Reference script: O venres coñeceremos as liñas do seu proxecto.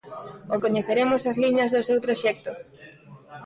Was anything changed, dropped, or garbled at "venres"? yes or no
yes